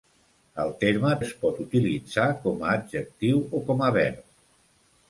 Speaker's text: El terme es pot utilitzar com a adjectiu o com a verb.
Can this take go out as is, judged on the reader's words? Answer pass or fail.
pass